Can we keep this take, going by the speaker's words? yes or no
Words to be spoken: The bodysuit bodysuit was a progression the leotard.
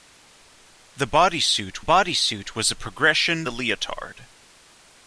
yes